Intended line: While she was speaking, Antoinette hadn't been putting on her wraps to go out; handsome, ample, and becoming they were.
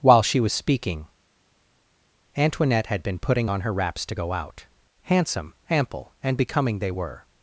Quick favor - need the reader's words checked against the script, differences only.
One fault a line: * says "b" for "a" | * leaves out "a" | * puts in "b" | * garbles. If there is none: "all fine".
* says "had" for "hadn't"